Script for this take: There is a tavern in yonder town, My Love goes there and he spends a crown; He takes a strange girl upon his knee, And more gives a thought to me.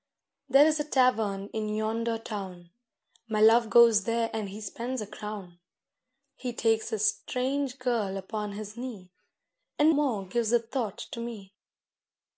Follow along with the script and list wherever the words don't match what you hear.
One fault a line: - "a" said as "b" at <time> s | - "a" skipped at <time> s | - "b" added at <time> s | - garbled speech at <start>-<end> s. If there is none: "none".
none